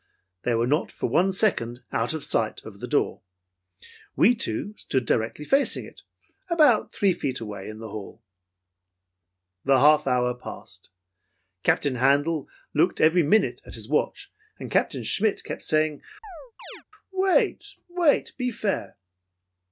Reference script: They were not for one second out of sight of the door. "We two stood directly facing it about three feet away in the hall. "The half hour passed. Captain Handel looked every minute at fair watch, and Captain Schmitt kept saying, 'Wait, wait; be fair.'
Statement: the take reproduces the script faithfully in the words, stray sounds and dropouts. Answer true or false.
false